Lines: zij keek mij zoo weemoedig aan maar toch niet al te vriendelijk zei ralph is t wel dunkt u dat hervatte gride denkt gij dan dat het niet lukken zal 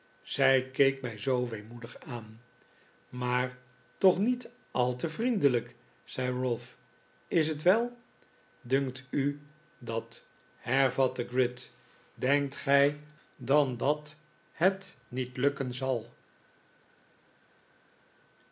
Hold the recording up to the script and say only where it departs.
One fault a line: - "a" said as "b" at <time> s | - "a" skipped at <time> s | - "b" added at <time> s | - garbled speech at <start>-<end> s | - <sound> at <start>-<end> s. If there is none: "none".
none